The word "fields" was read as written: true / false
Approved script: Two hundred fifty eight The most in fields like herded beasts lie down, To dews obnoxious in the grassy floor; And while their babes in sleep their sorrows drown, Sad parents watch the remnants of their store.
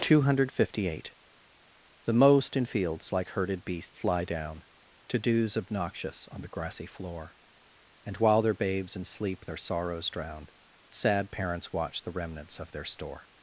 true